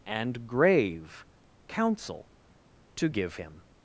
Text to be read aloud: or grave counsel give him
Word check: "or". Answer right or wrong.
wrong